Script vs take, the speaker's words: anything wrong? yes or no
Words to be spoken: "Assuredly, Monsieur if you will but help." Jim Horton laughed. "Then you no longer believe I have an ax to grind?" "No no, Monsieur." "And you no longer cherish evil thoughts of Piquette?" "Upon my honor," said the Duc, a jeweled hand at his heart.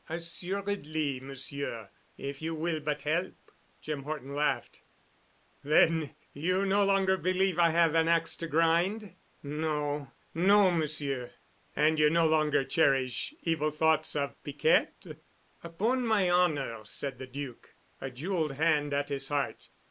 no